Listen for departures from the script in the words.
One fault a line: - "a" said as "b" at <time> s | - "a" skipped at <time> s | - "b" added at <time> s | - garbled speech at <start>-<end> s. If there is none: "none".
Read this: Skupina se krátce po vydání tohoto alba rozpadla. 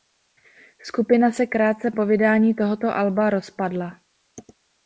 none